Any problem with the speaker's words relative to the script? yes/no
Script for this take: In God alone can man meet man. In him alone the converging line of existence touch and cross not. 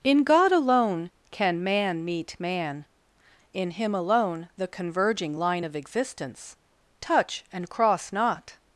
no